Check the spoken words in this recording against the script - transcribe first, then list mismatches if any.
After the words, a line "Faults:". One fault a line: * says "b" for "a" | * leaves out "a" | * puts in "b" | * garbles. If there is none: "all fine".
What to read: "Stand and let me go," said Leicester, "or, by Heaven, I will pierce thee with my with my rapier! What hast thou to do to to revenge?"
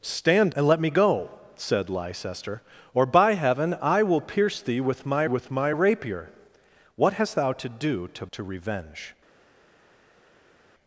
"Stand and let me go," said Leicester, "or, by Heaven, I will pierce thee with my with my rapier! What hast thou to do to to revenge?"
Faults:
all fine